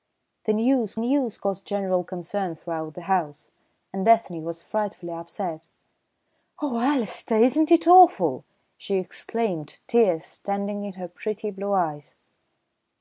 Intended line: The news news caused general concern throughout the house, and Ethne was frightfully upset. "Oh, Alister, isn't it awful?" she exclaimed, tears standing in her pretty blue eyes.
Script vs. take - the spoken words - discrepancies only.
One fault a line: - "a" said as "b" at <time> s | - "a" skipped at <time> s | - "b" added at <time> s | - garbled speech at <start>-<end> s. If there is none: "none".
none